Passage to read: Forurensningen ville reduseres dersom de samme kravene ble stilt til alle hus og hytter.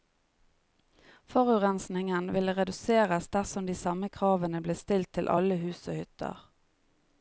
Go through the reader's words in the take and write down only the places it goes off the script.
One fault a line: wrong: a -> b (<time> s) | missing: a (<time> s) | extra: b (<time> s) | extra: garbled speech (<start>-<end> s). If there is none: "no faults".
no faults